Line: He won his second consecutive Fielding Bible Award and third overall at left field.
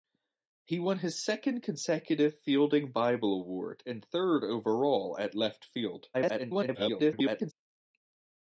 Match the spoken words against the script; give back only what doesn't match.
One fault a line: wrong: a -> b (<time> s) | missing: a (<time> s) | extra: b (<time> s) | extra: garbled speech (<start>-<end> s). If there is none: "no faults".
extra: garbled speech (6.1-7.5 s)